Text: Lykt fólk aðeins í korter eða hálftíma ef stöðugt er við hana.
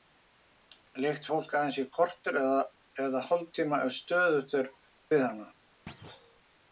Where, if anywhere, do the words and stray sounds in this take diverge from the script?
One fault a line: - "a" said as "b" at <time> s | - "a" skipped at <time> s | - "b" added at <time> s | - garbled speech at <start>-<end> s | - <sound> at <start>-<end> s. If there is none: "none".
- thud at 5.9-6.4 s